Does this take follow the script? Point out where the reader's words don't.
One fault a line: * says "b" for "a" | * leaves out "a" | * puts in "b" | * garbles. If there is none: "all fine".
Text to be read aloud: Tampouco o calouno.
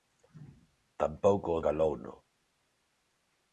all fine